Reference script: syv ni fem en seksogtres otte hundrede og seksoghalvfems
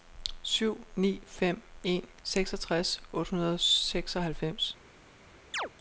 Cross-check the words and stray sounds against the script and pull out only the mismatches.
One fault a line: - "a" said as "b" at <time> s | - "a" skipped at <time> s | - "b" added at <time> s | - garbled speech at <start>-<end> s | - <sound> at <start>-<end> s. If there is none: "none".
- chirp at 5.5-5.7 s